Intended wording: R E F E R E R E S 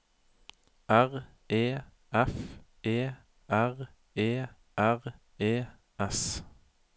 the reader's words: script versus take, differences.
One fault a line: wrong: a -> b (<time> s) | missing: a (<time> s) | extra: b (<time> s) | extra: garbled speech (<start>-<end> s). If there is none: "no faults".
no faults